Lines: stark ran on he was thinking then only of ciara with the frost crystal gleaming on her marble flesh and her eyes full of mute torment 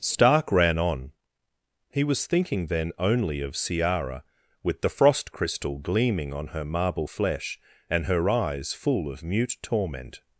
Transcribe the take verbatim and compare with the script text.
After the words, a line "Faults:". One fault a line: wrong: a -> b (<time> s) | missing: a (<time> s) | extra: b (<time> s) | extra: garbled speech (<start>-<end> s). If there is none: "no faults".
stark ran on he was thinking then only of ciara with the frost crystal gleaming on her marble flesh and her eyes full of mute torment
Faults:
no faults